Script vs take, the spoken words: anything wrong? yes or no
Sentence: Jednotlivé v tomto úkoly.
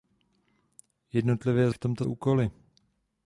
no